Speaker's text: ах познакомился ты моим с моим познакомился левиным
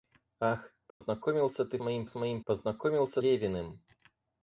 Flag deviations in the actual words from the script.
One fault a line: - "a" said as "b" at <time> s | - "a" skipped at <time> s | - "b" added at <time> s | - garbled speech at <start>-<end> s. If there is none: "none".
none